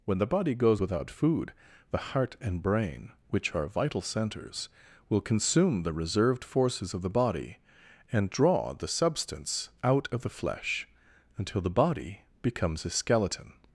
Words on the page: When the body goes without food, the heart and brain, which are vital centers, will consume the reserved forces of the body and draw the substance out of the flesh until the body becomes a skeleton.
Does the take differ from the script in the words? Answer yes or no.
no